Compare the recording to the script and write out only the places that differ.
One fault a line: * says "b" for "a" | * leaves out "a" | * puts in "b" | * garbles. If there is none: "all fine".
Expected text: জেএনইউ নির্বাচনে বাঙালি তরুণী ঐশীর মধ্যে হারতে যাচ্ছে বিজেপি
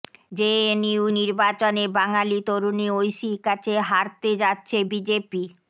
* says "কাছে" for "মধ্যে"